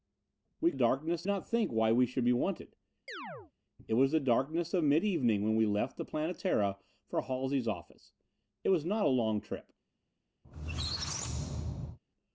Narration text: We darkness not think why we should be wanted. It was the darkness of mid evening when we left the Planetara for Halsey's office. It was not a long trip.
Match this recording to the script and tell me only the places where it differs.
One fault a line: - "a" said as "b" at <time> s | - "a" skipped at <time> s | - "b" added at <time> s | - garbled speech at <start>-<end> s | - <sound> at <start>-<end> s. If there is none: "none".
- chirp at 3.1-3.5 s
- squeak at 10.4-12.0 s